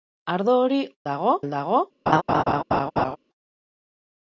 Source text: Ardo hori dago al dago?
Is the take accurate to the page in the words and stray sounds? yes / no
no